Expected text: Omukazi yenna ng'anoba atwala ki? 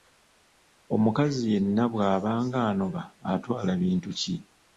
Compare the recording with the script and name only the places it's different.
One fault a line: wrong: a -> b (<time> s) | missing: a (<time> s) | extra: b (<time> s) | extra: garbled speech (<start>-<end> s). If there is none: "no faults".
extra: bw'aba (1.9 s)
extra: bintu (3.8 s)